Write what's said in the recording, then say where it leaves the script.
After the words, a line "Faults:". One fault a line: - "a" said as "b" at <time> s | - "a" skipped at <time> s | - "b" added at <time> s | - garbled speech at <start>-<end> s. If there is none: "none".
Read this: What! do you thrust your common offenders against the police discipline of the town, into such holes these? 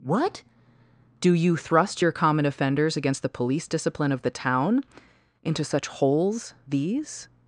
What! do you thrust your common offenders against the police discipline of the town, into such holes these?
Faults:
none